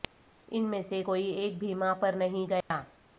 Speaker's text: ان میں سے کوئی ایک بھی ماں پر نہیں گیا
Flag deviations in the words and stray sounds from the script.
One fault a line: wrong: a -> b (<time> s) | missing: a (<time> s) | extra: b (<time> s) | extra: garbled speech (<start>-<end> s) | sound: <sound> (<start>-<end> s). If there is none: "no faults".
sound: dropout (2.6-2.7 s)